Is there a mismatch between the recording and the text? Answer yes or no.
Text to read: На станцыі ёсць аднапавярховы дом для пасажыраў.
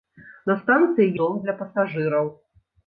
yes